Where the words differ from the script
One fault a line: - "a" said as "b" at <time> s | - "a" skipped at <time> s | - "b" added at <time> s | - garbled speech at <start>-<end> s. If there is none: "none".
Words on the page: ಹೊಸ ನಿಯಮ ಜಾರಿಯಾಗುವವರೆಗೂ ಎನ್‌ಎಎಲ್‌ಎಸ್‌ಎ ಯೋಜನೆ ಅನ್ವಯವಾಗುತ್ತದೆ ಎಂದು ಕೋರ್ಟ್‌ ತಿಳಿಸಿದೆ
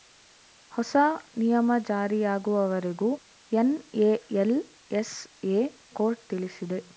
- "ಯೋಜನೆ ಅನ್ವಯವಾಗುತ್ತದೆ ಎಂದು" skipped at 5.7 s